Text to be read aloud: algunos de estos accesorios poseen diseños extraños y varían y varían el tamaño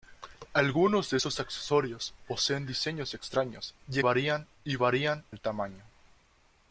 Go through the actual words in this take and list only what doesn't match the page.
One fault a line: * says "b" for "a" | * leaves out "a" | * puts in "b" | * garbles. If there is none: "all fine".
all fine